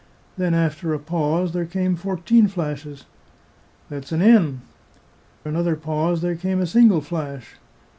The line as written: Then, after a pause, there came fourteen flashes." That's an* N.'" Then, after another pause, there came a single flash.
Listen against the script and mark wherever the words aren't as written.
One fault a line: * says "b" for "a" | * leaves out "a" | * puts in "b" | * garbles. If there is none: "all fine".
* leaves out "Then after"